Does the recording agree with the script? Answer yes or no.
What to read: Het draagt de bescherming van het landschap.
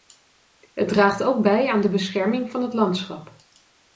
no